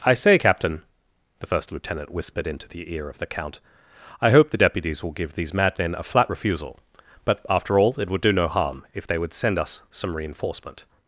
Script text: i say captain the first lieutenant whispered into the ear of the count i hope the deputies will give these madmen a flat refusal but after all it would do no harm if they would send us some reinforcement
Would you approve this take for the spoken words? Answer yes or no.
yes